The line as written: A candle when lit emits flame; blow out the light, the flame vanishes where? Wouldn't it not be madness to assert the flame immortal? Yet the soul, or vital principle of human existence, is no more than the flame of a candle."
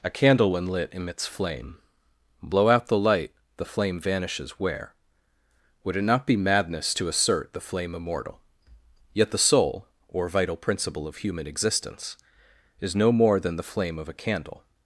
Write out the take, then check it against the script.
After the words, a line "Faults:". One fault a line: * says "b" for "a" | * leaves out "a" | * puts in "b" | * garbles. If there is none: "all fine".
A candle when lit emits flame; blow out the light, the flame vanishes where? Would it not be madness to assert the flame immortal? Yet the soul, or vital principle of human existence, is no more than the flame of a candle."
Faults:
* says "Would" for "Wouldn't"